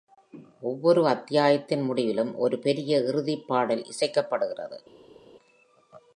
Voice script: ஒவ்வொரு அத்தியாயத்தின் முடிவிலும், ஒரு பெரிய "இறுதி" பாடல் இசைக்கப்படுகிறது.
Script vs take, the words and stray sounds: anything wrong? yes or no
no